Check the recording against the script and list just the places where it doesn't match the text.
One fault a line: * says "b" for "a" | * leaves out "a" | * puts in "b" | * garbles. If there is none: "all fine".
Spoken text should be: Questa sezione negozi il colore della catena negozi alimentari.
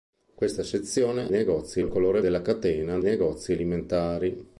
all fine